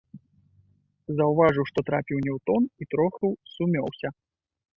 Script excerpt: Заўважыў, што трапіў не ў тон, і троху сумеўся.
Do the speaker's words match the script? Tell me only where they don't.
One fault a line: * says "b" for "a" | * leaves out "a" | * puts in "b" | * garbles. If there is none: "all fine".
all fine